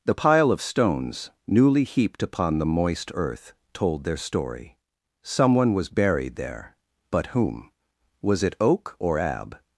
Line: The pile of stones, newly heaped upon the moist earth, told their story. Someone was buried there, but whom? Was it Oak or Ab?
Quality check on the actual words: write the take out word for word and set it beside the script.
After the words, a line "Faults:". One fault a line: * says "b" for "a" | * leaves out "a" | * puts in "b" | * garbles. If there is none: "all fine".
The pile of stones, newly heaped upon the moist earth, told their story. Someone was buried there, but whom? Was it Oak or Ab?
Faults:
all fine